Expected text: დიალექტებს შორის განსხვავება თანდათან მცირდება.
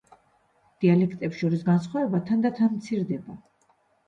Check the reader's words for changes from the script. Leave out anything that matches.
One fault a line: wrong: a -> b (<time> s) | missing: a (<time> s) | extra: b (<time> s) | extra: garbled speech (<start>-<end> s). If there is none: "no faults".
no faults